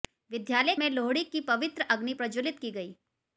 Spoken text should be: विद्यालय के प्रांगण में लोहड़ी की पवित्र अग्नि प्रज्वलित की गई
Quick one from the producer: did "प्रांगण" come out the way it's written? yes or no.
no